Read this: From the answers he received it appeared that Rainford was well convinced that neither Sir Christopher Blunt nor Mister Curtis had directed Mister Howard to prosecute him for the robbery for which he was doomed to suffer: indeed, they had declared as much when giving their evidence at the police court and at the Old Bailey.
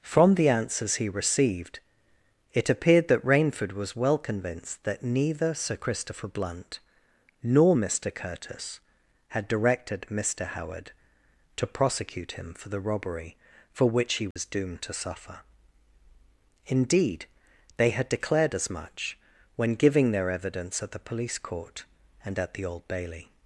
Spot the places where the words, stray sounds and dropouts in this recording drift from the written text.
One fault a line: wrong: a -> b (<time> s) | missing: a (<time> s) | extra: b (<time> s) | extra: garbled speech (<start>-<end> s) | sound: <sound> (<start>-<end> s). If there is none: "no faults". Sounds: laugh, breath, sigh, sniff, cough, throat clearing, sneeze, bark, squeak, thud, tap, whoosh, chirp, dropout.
sound: dropout (14.3-14.4 s)